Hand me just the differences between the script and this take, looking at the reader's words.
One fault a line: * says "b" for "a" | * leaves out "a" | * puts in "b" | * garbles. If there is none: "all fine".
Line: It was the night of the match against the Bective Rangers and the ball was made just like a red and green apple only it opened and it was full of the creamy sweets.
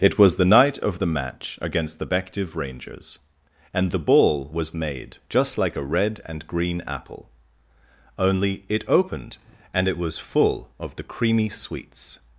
all fine